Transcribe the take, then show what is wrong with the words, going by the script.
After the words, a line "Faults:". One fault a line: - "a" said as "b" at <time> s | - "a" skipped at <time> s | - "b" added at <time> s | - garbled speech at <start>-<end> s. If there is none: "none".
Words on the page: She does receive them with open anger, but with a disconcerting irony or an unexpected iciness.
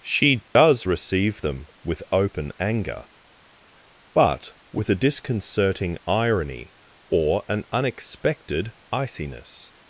She does receive them with open anger, but with a disconcerting irony or an unexpected iciness.
Faults:
none